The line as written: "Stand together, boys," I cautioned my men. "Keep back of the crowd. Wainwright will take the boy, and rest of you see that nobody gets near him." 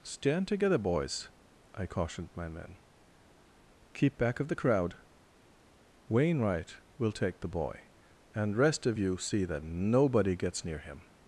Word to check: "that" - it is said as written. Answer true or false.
true